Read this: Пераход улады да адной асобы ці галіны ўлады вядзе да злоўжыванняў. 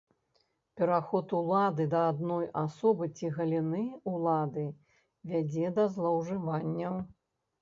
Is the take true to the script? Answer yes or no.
yes